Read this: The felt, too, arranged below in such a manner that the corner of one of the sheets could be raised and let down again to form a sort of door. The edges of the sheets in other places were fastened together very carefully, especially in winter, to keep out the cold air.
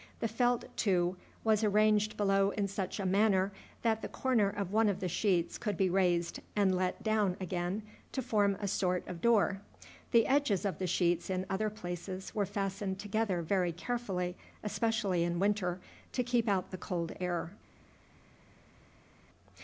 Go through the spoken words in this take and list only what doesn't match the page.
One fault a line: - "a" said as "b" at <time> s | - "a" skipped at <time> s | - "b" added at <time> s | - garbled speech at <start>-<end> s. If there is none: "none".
- "was" added at 1.4 s